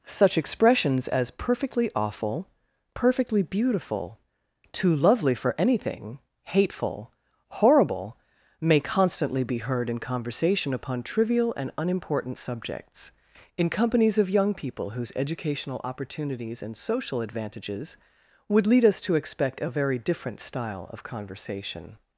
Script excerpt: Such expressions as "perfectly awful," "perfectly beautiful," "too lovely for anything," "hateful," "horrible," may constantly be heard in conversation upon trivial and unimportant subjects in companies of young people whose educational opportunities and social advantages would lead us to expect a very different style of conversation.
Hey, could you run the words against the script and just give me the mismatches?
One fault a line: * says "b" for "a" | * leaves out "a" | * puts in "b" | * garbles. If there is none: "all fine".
all fine